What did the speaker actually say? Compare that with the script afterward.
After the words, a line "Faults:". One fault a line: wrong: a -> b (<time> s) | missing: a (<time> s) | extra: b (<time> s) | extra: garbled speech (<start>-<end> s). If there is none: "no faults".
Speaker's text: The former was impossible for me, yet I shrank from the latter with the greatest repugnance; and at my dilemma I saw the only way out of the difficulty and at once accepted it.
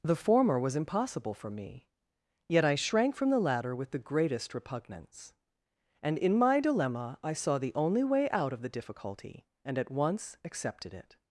The former was impossible for me, yet I shrank from the latter with the greatest repugnance; and in my dilemma I saw the only way out of the difficulty and at once accepted it.
Faults:
wrong: at -> in (6.2 s)